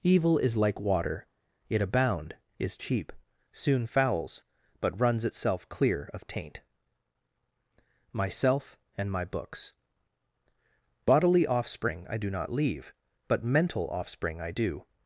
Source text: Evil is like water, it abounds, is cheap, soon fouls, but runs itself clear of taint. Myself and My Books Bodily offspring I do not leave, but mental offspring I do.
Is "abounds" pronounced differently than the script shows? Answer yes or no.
yes